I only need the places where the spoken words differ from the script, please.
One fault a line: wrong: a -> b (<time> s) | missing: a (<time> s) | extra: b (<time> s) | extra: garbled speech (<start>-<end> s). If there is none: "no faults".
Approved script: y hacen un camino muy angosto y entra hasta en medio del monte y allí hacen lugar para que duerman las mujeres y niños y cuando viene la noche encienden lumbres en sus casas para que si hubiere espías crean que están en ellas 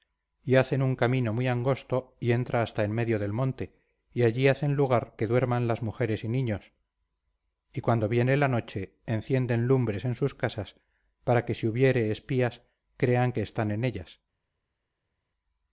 missing: para (5.2 s)